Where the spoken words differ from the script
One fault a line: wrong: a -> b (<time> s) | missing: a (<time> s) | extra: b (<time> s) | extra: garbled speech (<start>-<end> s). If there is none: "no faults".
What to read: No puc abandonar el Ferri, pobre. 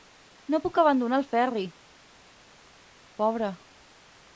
no faults